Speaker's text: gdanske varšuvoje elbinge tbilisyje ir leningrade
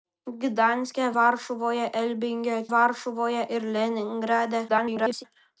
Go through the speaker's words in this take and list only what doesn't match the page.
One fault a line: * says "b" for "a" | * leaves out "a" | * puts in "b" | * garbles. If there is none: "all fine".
* says "varšuvoje" for "tbilisyje"
* garbles